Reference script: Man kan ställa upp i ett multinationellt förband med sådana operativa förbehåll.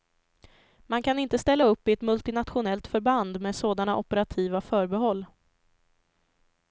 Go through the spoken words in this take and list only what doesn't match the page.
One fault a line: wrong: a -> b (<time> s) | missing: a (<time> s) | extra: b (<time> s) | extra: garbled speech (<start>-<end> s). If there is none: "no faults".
extra: inte (1.2 s)